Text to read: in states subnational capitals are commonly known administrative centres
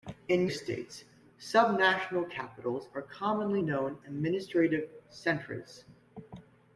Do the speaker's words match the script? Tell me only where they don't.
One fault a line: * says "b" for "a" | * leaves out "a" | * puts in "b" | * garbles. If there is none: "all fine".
all fine